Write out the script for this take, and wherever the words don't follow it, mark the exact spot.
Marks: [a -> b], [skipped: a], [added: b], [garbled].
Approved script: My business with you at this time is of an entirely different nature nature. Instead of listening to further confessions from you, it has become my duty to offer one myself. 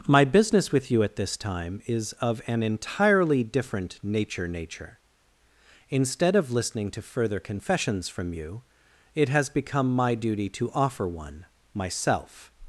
My business with you at this time is of an entirely different nature nature. Instead of listening to further confessions from you, it has become my duty to offer one myself.